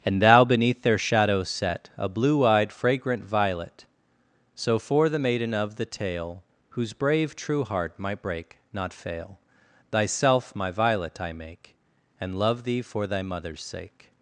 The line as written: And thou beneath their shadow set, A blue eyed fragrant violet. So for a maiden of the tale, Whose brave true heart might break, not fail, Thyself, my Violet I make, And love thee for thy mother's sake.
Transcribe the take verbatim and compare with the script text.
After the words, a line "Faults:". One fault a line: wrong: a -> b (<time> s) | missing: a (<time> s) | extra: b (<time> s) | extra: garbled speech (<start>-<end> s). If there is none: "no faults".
And thou beneath their shadow set, A blue eyed fragrant violet. So for the maiden of the tale, Whose brave true heart might break, not fail, Thyself, my Violet I make, And love thee for thy mother's sake.
Faults:
wrong: a -> the (5.1 s)